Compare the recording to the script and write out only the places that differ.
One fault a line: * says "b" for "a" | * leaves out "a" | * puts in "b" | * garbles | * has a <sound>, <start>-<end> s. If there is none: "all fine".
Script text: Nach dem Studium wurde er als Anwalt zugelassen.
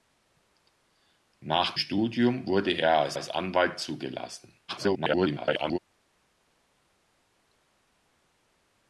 * leaves out "dem"
* puts in "als"
* garbles